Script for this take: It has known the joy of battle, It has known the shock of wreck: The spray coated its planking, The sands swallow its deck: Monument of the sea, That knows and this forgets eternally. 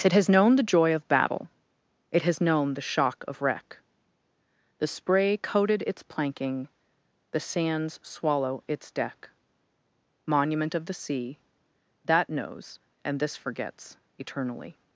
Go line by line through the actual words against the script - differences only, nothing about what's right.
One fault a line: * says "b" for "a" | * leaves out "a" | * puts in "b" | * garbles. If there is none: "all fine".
all fine